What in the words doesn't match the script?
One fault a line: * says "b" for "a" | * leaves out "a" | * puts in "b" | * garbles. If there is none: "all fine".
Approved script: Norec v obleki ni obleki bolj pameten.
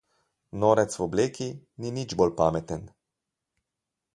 * says "nič" for "obleki"